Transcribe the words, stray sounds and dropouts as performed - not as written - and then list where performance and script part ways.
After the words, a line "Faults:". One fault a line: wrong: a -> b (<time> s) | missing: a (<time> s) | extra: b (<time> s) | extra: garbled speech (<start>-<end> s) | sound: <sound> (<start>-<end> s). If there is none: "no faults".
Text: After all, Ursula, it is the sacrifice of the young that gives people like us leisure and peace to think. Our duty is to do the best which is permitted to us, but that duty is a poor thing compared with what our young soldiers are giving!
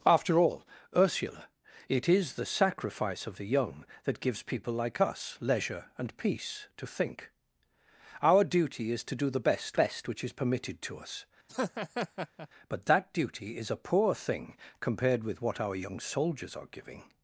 After all, Ursula, it is the sacrifice of the young that gives people like us leisure and peace to think. Our duty is to do the best best which is permitted to us, but that duty is a poor thing compared with what our young soldiers are giving!
Faults:
extra: best (9.8 s)
sound: laugh (11.5-12.5 s)